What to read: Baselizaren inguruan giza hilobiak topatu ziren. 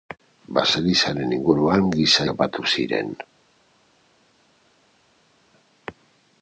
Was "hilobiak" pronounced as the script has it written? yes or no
no